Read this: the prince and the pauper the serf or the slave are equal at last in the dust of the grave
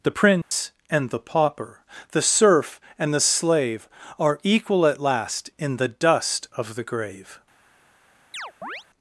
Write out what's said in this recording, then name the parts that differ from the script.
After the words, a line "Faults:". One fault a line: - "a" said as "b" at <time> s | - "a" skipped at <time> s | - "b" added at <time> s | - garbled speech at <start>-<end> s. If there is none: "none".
the prince and the pauper the serf and the slave are equal at last in the dust of the grave
Faults:
- "or" said as "and" at 3.0 s